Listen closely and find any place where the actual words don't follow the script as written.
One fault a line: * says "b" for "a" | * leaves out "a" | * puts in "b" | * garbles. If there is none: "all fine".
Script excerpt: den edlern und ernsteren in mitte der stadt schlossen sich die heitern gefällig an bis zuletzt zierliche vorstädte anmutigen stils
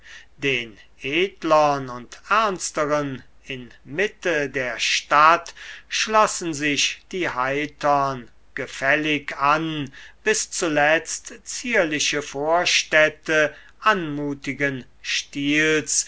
all fine